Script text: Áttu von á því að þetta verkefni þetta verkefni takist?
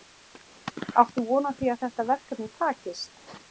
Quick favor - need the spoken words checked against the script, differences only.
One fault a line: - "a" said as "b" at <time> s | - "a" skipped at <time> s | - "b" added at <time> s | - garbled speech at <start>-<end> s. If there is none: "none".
- "þetta verkefni" skipped at 2.5 s